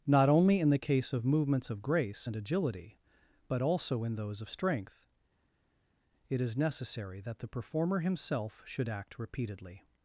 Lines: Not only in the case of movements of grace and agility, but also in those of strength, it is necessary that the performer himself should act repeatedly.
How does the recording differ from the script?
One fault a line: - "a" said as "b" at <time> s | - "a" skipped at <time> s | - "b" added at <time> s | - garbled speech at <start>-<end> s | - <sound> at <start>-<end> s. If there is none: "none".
none